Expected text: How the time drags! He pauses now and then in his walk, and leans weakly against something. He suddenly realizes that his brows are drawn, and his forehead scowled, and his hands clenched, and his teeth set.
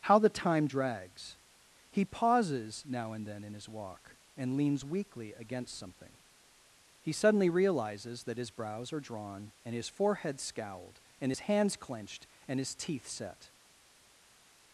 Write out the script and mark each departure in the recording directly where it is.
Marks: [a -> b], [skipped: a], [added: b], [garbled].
How the time drags! He pauses now and then in his walk, and leans weakly against something. He suddenly realizes that his brows are drawn, and his forehead scowled, and his hands clenched, and his teeth set.